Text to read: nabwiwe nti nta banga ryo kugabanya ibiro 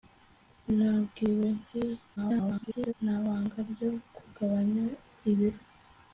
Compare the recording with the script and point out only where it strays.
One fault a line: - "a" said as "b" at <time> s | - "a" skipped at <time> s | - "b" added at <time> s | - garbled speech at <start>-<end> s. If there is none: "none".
- garbled speech at 2.2-2.9 s